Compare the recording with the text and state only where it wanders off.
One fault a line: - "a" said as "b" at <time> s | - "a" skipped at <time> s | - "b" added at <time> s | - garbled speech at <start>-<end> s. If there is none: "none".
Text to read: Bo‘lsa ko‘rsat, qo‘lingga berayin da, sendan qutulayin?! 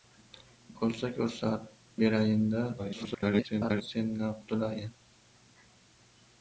- "qo‘lingga" skipped at 1.7 s
- garbled speech at 2.8-3.8 s